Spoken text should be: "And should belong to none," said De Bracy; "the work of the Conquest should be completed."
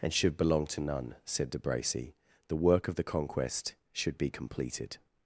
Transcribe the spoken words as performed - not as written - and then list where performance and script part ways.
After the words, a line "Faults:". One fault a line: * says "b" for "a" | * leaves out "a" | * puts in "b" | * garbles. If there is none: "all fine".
"And should belong to none," said De Bracy; "the work of the Conquest should be completed."
Faults:
all fine